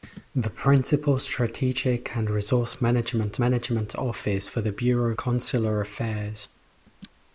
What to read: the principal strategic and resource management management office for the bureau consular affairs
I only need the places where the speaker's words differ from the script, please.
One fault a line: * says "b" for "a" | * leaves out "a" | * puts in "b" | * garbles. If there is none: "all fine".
all fine